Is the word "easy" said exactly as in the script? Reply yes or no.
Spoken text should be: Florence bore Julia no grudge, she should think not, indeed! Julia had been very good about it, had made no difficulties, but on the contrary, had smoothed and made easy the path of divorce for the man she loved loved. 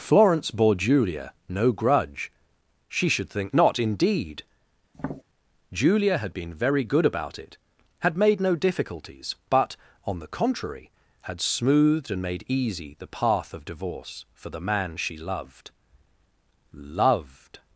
yes